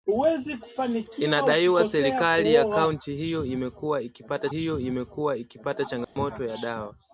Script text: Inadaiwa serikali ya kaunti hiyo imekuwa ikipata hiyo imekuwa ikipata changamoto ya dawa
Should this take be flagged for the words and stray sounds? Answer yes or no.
yes